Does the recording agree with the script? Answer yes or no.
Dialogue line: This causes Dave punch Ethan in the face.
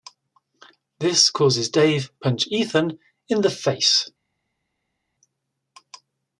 yes